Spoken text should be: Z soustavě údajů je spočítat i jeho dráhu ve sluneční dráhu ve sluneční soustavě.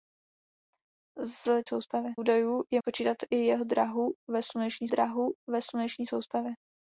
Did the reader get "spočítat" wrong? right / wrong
right